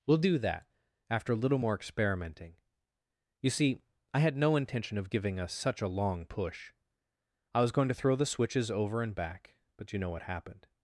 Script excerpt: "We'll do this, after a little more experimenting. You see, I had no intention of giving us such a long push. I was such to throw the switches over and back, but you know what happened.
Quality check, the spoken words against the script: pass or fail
fail